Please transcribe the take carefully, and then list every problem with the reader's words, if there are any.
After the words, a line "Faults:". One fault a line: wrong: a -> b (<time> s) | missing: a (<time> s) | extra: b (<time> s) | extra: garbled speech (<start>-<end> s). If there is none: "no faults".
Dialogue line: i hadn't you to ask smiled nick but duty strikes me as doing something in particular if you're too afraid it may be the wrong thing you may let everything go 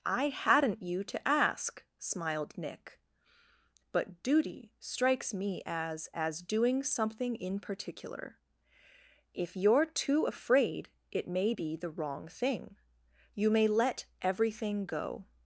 i hadn't you to ask smiled nick but duty strikes me as as doing something in particular if you're too afraid it may be the wrong thing you may let everything go
Faults:
extra: as (6.1 s)